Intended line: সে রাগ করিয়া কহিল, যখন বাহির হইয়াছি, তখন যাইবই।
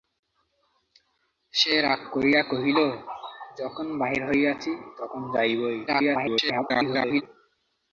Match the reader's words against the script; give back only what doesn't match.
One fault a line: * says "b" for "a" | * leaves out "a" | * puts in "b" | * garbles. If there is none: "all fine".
* garbles